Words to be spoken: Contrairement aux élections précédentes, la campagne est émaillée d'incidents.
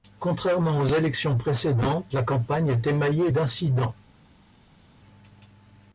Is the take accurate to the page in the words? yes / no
yes